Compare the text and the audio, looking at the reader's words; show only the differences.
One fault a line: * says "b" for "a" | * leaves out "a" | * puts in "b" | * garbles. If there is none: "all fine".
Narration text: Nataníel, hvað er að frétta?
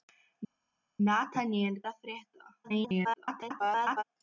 * leaves out "hvað"
* garbles